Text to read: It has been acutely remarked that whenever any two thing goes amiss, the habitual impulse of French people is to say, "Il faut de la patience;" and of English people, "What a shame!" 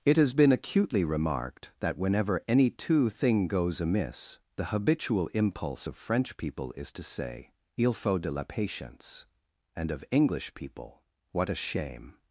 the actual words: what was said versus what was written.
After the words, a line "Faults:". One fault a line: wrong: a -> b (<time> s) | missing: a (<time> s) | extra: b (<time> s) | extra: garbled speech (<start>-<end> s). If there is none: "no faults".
It has been acutely remarked that whenever any two thing goes amiss, the habitual impulse of French people is to say, "Il faut de la patience;" and of English people, "What a shame!"
Faults:
no faults